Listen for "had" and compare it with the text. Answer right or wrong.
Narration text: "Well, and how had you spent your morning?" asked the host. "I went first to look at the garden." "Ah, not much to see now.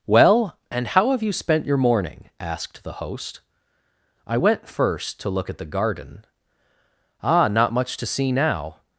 wrong